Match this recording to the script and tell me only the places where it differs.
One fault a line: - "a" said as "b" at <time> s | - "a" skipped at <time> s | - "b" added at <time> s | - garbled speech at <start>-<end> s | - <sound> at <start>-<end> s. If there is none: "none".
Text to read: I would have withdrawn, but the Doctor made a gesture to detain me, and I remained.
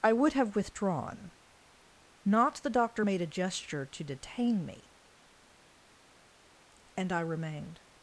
- "but" said as "not" at 2.2 s